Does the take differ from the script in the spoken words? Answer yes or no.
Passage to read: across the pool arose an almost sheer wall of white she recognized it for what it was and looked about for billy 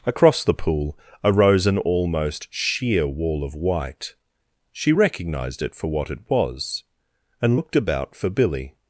no